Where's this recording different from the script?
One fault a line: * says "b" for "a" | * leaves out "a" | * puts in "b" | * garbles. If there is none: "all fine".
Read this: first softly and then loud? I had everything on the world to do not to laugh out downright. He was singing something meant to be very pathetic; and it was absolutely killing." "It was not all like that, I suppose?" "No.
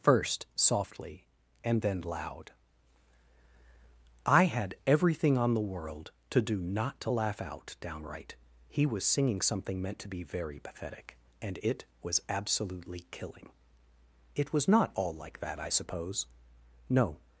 all fine